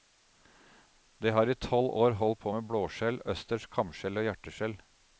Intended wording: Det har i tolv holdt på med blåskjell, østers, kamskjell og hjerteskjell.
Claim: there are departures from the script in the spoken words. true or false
true